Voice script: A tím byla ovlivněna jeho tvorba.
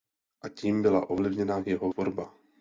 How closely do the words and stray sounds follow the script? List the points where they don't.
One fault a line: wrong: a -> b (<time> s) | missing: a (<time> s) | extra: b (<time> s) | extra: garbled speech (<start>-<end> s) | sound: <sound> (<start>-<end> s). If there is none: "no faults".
no faults